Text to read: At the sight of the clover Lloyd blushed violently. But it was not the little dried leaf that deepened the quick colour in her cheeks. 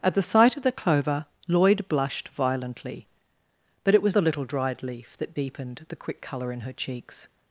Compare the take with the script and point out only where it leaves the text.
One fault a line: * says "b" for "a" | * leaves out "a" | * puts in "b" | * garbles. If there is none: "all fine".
* leaves out "not"